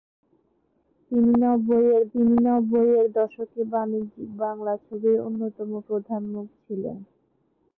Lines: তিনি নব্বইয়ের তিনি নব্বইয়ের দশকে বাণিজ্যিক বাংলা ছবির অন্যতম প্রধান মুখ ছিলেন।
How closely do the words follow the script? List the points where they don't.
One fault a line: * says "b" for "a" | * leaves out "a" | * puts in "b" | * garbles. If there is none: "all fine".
all fine